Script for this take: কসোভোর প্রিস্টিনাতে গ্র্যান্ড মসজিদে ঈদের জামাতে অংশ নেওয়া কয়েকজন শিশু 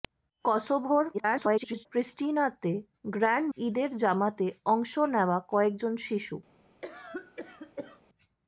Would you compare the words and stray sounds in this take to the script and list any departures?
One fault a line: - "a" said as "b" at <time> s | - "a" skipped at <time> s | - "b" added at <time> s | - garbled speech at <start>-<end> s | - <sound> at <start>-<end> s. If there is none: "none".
- garbled speech at 1.1-1.9 s
- "মসজিদে" skipped at 3.5 s
- cough at 6.8-8.0 s